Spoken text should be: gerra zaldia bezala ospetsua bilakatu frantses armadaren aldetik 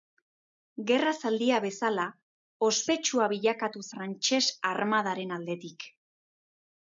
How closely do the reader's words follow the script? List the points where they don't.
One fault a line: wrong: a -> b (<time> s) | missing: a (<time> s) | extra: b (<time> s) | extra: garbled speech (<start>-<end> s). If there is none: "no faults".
no faults